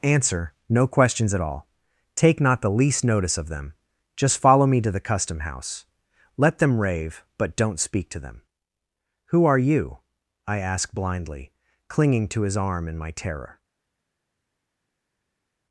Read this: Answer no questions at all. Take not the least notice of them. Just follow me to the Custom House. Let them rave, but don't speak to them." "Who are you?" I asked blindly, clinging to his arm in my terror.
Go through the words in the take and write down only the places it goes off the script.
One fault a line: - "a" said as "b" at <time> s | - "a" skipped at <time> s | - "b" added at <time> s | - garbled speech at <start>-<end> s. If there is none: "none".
- "asked" said as "ask" at 10.6 s